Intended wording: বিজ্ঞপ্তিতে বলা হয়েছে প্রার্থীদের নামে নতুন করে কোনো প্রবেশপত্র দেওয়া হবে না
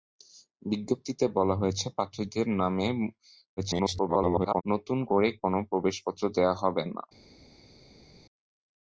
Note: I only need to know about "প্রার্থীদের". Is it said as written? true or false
true